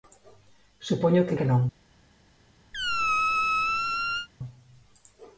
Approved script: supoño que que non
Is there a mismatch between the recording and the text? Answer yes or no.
no